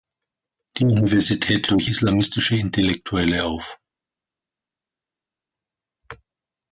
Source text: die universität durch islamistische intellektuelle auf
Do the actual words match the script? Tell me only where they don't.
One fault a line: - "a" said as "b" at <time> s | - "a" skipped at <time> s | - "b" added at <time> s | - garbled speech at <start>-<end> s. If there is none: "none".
none